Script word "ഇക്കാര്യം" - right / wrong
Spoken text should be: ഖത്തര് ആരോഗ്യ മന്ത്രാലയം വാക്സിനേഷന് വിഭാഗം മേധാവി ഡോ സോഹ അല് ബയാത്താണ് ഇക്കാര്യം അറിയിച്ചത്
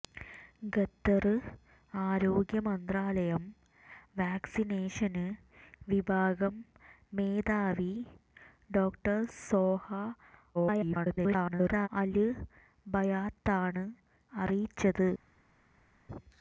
wrong